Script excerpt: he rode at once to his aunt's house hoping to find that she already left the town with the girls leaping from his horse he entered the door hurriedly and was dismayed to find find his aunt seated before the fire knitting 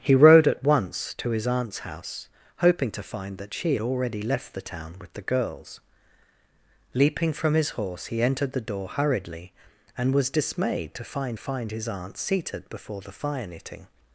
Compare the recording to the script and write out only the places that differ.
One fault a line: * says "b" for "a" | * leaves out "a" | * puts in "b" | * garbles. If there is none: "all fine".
all fine